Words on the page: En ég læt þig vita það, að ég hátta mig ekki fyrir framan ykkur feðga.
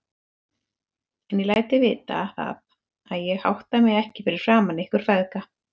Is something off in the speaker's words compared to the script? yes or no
no